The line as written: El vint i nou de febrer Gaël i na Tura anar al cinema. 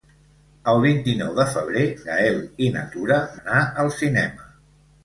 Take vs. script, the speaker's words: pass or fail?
pass